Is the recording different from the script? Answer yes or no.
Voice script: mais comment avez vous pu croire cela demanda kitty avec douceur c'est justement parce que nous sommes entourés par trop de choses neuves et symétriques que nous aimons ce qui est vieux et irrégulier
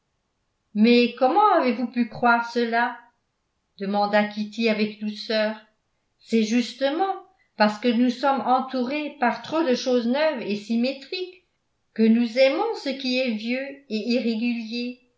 no